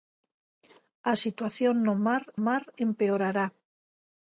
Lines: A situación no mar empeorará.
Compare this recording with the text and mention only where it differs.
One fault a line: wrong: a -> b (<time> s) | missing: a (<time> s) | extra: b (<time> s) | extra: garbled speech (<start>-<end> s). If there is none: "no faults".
extra: mar (2.5 s)